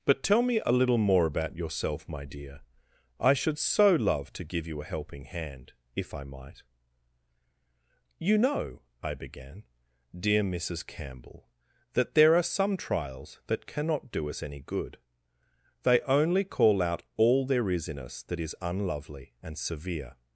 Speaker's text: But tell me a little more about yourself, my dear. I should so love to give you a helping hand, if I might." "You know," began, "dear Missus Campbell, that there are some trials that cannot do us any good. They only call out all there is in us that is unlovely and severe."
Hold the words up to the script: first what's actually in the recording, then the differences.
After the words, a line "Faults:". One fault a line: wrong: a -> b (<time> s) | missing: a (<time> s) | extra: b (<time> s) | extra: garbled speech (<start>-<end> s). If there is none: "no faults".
But tell me a little more about yourself, my dear. I should so love to give you a helping hand, if I might." "You know," I began, "dear Missus Campbell, that there are some trials that cannot do us any good. They only call out all there is in us that is unlovely and severe."
Faults:
extra: I (9.0 s)